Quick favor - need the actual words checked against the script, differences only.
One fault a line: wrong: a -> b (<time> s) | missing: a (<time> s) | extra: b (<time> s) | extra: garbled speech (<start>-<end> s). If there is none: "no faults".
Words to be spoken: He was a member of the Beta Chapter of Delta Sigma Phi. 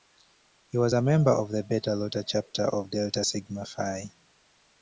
extra: Iota (1.9 s)